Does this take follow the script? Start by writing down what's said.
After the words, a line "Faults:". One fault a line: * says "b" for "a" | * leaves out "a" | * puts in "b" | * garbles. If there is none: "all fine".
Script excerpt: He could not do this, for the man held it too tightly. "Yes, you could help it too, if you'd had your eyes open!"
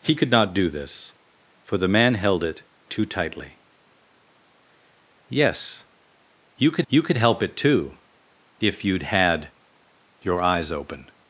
He could not do this, for the man held it too tightly. "Yes, you could you could help it too, if you'd had your eyes open!"
Faults:
* puts in "you could"